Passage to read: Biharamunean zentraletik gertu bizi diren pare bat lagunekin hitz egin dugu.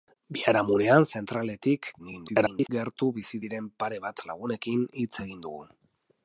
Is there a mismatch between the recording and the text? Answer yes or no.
yes